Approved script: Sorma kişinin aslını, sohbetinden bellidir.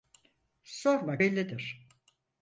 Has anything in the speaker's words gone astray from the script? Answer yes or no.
yes